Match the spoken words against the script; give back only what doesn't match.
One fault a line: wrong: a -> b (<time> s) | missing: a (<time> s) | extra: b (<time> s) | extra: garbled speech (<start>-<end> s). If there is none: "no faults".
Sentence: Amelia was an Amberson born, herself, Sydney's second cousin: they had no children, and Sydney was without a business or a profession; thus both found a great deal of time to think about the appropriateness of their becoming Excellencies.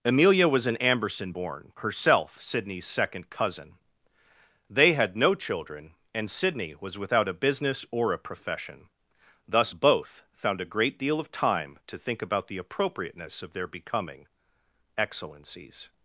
no faults